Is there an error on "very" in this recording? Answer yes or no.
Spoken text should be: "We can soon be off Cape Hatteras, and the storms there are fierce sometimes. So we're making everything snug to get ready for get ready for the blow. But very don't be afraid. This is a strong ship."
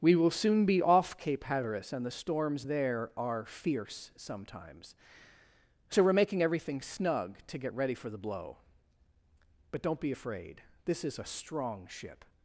yes